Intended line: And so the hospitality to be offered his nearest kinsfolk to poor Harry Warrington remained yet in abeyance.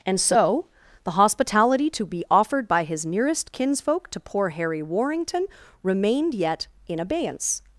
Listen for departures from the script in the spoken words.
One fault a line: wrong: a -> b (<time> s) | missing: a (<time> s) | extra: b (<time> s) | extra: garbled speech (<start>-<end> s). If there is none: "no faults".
extra: by (2.7 s)